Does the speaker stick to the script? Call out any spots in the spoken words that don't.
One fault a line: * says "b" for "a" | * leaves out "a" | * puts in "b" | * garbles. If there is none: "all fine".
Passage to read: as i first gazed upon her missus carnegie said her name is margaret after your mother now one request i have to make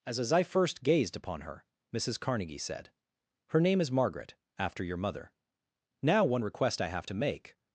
* puts in "as"